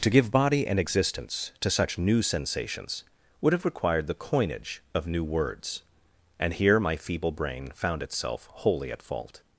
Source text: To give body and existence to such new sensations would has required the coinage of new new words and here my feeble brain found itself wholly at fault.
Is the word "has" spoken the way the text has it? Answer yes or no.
no